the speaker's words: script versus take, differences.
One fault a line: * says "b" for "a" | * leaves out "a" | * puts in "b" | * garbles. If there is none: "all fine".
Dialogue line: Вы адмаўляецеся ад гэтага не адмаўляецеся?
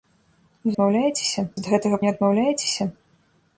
all fine